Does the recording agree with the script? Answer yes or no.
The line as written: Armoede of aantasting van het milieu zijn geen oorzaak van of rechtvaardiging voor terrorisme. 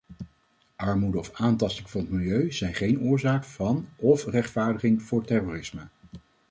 yes